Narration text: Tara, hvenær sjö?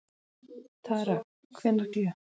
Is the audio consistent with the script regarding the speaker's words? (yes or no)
yes